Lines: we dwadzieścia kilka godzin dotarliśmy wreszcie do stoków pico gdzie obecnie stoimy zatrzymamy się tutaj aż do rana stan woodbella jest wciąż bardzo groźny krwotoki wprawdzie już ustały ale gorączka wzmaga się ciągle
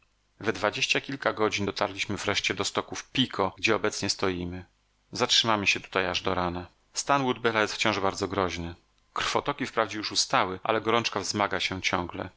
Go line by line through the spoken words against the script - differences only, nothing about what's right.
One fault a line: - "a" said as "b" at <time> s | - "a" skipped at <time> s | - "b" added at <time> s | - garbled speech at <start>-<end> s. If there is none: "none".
none